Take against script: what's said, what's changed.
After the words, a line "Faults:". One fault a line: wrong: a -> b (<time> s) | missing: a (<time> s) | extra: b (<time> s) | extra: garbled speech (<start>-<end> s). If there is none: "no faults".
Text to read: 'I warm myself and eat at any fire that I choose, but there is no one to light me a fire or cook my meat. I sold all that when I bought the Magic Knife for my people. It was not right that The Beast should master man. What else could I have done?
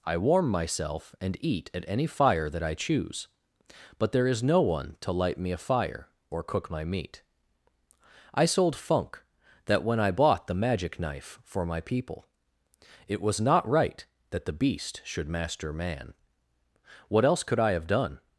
'I warm myself and eat at any fire that I choose, but there is no one to light me a fire or cook my meat. I sold funk that when I bought the Magic Knife for my people. It was not right that The Beast should master man. What else could I have done?
Faults:
wrong: all -> funk (8.8 s)